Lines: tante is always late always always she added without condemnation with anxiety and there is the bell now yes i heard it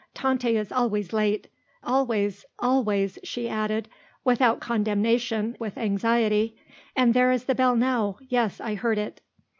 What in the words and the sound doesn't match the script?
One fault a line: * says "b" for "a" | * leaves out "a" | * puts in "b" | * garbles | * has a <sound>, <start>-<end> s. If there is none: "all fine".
all fine